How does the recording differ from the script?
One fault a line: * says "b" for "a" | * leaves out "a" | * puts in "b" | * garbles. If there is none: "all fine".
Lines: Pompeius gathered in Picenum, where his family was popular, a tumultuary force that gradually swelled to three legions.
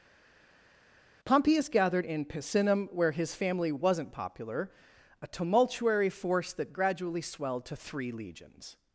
* says "wasn't" for "was"